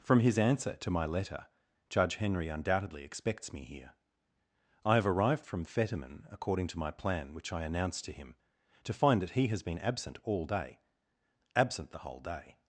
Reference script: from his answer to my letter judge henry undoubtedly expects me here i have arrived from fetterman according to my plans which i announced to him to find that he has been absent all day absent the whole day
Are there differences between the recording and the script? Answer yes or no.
yes